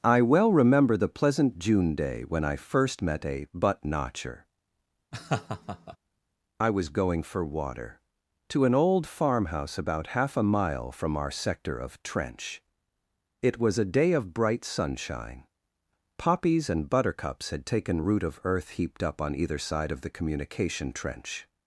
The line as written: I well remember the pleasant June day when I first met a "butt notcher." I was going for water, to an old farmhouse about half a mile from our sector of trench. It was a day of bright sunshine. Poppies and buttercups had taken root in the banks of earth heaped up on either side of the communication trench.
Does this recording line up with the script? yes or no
no